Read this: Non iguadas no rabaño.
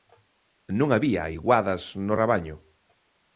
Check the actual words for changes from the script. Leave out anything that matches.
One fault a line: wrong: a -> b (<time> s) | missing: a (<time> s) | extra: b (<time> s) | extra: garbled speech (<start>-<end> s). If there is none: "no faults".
extra: había (0.9 s)